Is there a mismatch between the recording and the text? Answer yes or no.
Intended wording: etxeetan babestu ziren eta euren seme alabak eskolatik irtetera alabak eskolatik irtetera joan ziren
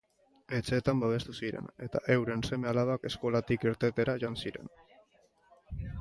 yes